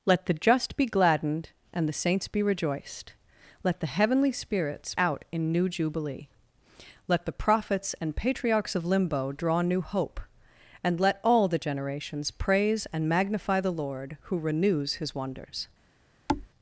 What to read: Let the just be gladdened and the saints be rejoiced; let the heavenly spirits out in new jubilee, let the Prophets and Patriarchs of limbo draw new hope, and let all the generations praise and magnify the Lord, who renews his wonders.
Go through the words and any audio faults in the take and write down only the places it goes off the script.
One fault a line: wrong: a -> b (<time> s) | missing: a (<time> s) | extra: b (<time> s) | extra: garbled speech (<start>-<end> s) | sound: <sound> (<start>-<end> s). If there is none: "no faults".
sound: thud (16.3-16.5 s)